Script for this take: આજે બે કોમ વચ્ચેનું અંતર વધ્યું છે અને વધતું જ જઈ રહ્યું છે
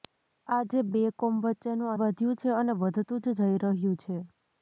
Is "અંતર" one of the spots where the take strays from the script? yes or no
yes